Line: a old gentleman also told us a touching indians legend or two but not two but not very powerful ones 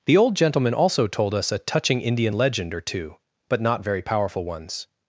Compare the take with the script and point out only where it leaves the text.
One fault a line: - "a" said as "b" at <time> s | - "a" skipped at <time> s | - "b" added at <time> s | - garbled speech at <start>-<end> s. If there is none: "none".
- "a" said as "the" at 0.1 s
- "indians" said as "indian" at 2.0 s
- "two but not" skipped at 3.8 s